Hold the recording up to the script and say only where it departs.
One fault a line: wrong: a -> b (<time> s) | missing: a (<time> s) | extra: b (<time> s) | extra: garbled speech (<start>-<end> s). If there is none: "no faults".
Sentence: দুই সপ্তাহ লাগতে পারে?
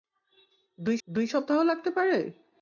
extra: দুই (1.1 s)